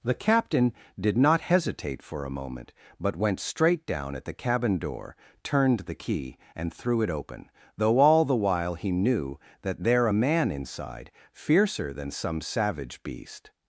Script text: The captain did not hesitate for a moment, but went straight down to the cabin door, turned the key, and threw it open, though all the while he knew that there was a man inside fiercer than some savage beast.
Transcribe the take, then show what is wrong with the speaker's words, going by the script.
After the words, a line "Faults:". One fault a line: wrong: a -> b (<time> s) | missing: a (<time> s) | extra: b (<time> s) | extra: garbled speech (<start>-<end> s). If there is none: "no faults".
The captain did not hesitate for a moment, but went straight down at the cabin door, turned the key, and threw it open, though all the while he knew that there a man inside fiercer than some savage beast.
Faults:
wrong: to -> at (4.2 s)
missing: was (10.1 s)